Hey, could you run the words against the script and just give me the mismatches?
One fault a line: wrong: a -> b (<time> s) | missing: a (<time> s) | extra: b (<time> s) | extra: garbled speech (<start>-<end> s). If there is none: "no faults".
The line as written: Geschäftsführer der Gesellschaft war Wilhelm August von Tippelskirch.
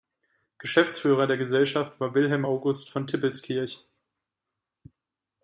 no faults